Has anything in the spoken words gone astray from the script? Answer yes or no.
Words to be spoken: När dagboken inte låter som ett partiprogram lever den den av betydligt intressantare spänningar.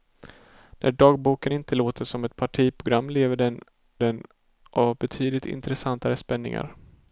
no